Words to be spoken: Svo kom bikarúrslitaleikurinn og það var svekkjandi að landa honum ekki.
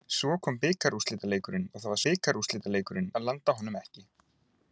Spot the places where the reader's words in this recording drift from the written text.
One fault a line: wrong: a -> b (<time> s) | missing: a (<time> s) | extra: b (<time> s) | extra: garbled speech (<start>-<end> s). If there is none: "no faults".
wrong: svekkjandi -> bikarúrslitaleikurinn (2.0 s)